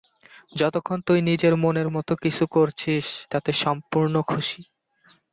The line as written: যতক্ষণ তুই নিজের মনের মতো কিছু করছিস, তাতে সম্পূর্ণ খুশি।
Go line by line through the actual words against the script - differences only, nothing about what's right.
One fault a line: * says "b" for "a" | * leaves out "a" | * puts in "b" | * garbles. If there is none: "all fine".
all fine